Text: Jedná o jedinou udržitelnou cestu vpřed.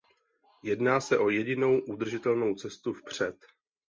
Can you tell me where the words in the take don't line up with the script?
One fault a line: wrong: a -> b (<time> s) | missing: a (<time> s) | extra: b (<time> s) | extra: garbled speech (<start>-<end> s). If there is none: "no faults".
extra: se (1.0 s)